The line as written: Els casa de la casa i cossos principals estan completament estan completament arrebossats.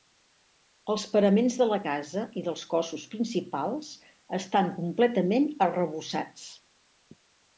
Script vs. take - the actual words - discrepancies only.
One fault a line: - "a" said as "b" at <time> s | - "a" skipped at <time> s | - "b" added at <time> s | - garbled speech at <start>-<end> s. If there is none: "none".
- "casa" said as "paraments" at 1.1 s
- "dels" added at 2.4 s
- "estan completament" skipped at 5.5 s